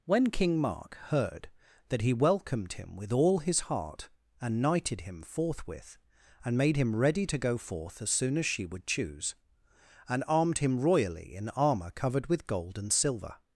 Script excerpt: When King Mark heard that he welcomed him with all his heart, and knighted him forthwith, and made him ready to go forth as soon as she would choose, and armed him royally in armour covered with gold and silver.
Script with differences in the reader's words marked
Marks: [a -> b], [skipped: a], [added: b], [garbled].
When King Mark heard that he welcomed him with all his heart, and knighted him forthwith, and made him ready to go forth as soon as she would choose, and armed him royally in armour covered with gold and silver.